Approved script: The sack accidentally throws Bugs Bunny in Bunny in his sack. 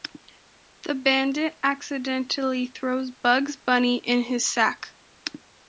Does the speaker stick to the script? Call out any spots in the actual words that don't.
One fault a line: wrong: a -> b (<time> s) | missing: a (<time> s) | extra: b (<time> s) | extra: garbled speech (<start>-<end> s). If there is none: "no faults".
wrong: sack -> bandit (0.9 s)
missing: Bunny in (4.2 s)